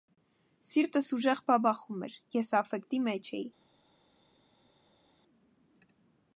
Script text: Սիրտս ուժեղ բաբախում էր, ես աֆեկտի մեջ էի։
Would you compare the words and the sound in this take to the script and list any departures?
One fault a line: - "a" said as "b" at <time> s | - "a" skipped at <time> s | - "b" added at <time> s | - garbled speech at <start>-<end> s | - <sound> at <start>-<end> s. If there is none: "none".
none